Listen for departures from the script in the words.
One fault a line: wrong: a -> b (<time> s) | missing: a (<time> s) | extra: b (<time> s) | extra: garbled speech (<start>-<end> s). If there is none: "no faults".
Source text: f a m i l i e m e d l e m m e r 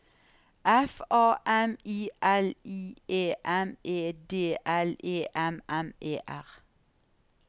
no faults